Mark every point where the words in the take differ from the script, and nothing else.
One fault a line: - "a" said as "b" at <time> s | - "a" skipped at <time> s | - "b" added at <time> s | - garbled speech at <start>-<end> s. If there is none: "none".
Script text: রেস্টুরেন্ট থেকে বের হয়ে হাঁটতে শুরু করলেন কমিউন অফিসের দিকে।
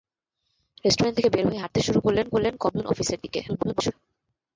- "করলেন" added at 2.3 s
- garbled speech at 3.5-3.9 s